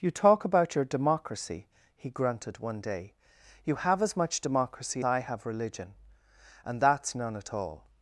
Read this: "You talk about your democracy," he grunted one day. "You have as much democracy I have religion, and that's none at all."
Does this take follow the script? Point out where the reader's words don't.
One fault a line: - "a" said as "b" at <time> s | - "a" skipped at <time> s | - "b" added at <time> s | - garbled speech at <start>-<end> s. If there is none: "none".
none